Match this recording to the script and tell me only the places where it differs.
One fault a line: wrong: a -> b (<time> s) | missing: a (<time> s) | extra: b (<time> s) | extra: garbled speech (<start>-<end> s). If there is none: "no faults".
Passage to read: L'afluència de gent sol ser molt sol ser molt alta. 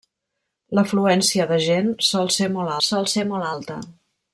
no faults